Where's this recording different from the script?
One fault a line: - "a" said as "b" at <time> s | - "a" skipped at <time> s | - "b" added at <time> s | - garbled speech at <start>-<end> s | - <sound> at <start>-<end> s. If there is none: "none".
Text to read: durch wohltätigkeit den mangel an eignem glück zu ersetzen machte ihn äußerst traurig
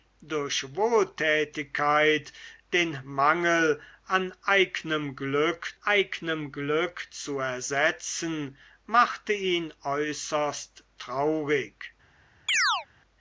- "eignem glück" added at 5.8 s
- chirp at 12.5-12.9 s